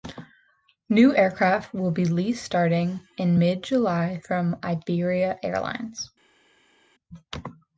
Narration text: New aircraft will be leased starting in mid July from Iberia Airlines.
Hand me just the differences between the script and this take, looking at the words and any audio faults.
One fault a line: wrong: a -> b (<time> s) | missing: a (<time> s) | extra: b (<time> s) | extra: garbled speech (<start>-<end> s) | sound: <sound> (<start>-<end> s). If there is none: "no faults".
no faults